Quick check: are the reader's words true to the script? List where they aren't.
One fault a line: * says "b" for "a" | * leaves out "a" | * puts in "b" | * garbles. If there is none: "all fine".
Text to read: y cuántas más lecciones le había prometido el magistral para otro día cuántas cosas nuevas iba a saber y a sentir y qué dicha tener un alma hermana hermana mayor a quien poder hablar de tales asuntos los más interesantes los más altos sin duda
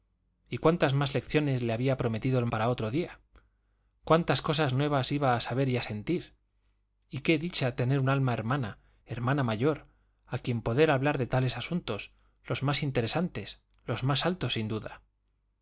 * leaves out "magistral"